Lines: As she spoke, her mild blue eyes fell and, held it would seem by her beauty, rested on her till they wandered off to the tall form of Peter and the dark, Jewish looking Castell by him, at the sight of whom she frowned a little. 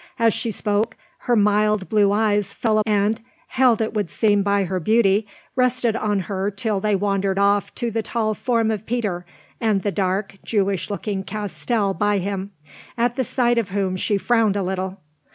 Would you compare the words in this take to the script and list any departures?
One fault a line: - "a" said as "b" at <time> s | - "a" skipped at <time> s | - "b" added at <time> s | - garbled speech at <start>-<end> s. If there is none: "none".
none